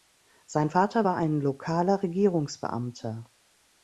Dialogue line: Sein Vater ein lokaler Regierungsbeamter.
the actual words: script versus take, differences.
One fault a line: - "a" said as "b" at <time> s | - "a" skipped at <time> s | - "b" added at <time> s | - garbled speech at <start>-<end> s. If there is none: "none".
- "war" added at 1.0 s